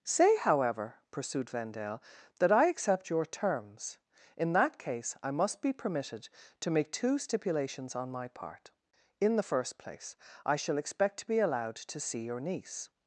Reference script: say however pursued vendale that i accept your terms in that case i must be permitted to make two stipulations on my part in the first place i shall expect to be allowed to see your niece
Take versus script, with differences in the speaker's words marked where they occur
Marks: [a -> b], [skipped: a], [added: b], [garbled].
say however pursued vendale that i accept your terms in that case i must be permitted to make two stipulations on my part in the first place i shall expect to be allowed to see your niece